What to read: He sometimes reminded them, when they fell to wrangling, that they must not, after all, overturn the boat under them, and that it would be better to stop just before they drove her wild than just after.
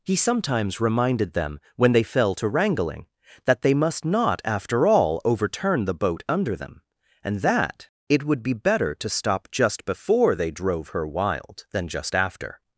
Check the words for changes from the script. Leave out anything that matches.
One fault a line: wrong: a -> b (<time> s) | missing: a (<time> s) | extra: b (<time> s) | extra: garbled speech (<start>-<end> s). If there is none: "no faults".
no faults